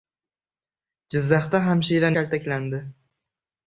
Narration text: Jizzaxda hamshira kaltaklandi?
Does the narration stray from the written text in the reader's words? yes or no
no